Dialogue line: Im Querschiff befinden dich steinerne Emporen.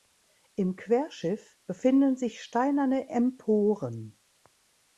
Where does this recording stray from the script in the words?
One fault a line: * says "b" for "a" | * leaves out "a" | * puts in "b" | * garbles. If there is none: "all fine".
* says "sich" for "dich"